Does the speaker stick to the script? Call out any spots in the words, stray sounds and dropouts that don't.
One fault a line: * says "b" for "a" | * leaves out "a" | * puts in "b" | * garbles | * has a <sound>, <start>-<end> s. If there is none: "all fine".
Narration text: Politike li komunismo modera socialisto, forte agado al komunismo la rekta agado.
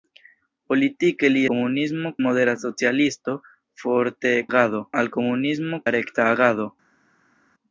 all fine